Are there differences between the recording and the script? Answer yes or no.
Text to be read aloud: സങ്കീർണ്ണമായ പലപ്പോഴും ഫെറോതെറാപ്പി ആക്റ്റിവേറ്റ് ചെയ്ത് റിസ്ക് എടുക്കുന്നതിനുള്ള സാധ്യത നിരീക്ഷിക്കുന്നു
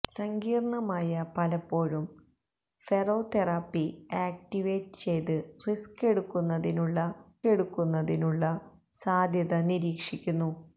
yes